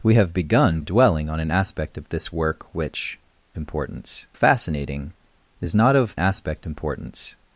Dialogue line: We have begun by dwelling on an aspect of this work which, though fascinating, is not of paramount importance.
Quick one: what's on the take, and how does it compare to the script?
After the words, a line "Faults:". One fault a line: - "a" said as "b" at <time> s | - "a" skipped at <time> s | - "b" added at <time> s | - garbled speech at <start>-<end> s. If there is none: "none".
We have begun dwelling on an aspect of this work which, importance fascinating, is not of aspect importance.
Faults:
- "by" skipped at 0.8 s
- "though" said as "importance" at 3.5 s
- "paramount" said as "aspect" at 6.2 s